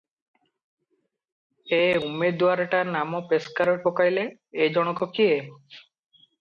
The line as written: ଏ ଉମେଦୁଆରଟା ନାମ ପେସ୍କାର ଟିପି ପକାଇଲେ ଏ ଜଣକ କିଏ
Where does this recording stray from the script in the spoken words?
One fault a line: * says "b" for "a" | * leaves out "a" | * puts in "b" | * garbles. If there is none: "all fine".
* leaves out "ଟିପି"